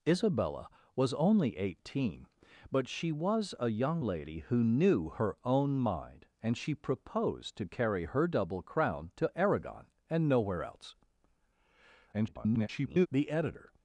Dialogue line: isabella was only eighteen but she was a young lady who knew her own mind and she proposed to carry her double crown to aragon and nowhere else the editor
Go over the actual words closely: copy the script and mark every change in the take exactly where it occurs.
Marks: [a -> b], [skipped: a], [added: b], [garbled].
isabella was only eighteen but she was a young lady who knew her own mind and she proposed to carry her double crown to aragon and nowhere else [garbled] the editor